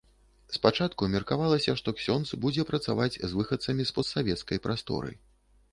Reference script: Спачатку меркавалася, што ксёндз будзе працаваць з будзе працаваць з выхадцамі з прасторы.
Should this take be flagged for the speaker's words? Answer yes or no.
yes